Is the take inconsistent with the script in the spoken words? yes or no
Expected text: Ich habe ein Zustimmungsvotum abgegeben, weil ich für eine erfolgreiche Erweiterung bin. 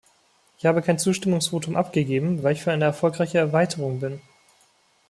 yes